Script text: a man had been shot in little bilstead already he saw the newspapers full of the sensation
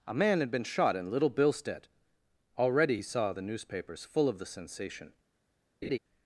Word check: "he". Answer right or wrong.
right